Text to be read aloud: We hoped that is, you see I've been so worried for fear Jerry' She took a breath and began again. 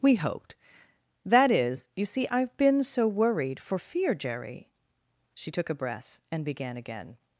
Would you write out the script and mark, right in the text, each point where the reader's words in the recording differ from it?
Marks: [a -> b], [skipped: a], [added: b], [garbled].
We hoped that is, you see I've been so worried for fear Jerry' She took a breath and began again.